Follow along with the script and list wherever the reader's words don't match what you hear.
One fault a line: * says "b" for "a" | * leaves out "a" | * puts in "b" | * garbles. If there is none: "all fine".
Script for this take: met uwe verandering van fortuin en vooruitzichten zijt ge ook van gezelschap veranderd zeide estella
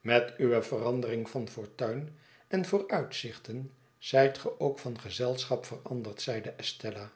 all fine